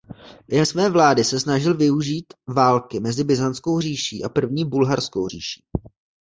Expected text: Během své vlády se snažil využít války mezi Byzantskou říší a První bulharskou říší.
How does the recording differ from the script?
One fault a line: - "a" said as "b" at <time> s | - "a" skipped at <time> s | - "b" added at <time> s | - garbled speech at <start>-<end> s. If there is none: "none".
none